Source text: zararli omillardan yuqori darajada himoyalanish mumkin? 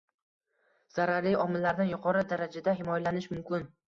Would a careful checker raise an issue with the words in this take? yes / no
no